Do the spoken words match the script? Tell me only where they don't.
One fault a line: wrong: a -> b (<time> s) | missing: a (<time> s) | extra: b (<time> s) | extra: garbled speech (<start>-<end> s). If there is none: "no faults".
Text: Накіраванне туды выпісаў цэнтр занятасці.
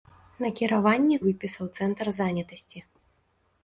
missing: туды (1.2 s)